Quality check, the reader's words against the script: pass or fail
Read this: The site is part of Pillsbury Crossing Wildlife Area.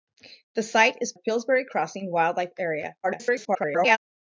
fail